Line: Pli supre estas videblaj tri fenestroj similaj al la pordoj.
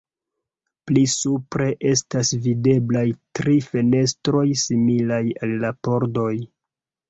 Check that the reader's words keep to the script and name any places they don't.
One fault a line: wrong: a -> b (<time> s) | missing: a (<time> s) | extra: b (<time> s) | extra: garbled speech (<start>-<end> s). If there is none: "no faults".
no faults